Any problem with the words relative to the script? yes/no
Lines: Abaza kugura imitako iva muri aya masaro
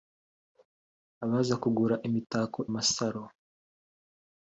yes